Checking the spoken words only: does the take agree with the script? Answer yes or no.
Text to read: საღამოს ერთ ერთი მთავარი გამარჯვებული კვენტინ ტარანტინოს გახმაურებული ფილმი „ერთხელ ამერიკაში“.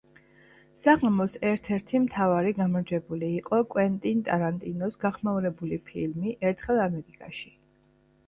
no